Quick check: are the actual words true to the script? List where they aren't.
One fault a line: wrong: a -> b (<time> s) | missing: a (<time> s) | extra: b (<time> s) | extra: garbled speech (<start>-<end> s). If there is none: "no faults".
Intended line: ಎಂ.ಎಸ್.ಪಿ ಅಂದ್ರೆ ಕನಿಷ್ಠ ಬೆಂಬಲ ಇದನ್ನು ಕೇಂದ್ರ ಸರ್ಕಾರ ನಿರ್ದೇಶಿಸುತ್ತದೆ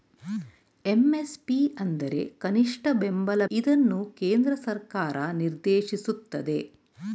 no faults